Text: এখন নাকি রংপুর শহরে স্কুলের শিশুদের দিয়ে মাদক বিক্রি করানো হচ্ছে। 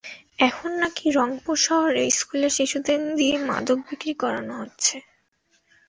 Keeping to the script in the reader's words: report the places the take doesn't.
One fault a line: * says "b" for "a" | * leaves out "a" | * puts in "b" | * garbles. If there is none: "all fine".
all fine